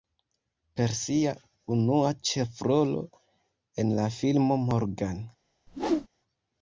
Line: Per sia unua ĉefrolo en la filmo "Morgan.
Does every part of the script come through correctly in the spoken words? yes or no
yes